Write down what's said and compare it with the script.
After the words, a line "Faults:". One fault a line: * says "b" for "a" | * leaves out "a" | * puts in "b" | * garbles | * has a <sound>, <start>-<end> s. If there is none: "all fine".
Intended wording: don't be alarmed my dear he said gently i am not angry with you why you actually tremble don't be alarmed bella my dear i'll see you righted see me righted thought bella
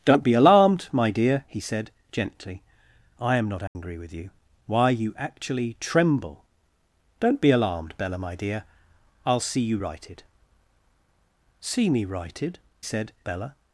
don't be alarmed my dear he said gently i am not angry with you why you actually tremble don't be alarmed bella my dear i'll see you righted see me righted said bella
Faults:
* has a dropout, 3.7-3.8 s
* says "said" for "thought"